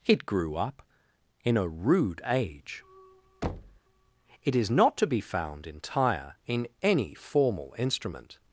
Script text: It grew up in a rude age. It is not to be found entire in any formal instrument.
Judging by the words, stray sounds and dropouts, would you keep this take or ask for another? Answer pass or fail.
fail